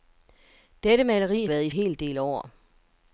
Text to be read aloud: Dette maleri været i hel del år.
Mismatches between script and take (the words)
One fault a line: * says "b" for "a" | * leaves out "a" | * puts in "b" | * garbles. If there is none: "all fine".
all fine